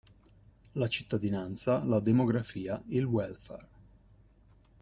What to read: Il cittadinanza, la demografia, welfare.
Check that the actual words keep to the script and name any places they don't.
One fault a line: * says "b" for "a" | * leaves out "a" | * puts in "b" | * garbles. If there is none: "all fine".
* says "La" for "Il"
* puts in "il"